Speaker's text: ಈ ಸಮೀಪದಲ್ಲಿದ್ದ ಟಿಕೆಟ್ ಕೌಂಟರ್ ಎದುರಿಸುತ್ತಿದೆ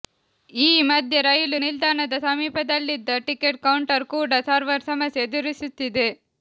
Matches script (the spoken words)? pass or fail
fail